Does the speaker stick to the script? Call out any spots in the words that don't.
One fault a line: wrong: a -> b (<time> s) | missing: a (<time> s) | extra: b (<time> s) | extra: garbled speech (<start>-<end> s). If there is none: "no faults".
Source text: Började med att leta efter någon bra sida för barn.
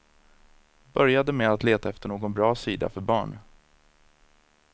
no faults